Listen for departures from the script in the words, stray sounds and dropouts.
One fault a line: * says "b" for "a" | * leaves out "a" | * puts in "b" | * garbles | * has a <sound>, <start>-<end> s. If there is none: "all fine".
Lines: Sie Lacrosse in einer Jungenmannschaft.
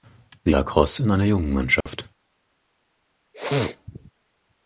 * has a dropout, 1.8-1.9 s
* has a sneeze, 3.3-4.1 s